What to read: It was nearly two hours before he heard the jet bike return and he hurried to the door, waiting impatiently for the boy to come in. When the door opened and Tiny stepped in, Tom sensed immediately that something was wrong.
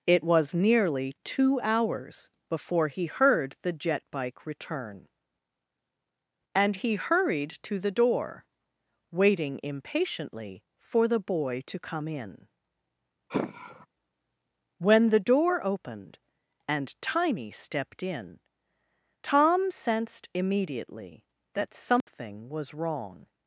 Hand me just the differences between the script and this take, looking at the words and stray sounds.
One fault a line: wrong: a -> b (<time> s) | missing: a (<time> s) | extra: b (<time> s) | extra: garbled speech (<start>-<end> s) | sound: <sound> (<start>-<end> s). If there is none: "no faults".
sound: sigh (13.3-13.9 s)
sound: dropout (22.0-22.1 s)